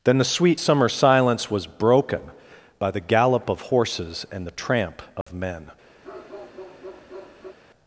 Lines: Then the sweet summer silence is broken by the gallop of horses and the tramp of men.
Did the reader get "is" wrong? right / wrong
wrong